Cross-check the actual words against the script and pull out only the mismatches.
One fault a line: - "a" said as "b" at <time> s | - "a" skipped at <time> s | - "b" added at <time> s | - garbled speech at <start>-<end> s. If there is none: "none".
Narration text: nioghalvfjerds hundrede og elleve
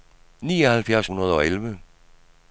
none